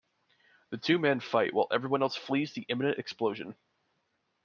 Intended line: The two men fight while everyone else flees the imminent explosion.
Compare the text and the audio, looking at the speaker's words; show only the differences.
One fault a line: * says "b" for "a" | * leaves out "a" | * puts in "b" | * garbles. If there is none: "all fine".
all fine